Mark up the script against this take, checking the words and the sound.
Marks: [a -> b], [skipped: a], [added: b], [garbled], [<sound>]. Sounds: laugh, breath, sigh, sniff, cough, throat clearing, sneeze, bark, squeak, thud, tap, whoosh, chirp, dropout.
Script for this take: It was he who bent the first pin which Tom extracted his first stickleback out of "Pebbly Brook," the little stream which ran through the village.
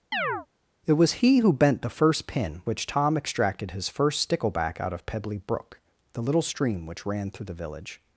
[chirp] It was he who bent the first pin which Tom extracted his first stickleback out of "Pebbly Brook," the little stream which ran through the village.